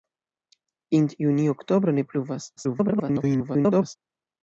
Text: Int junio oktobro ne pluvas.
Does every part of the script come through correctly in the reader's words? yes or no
no